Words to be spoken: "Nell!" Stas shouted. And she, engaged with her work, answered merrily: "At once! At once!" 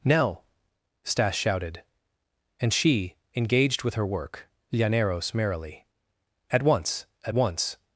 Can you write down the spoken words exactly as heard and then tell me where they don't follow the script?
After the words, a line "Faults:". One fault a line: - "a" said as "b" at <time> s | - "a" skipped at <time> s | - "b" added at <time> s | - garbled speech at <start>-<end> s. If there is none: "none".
"Nell!" Stas shouted. And she, engaged with her work, llaneros merrily: "At once! At once!"
Faults:
- "answered" said as "llaneros" at 4.7 s